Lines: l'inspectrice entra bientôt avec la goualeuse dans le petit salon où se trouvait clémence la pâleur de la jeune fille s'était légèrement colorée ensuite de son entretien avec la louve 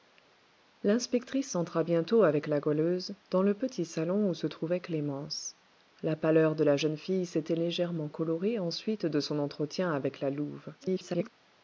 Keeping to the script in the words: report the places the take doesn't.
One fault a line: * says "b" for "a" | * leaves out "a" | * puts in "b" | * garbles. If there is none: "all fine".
* garbles